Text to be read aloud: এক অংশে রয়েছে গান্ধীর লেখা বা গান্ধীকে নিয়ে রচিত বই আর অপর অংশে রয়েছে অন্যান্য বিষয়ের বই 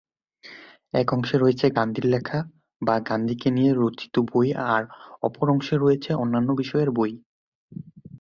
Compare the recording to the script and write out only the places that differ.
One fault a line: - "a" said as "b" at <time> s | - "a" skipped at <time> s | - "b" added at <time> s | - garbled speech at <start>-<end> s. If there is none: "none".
none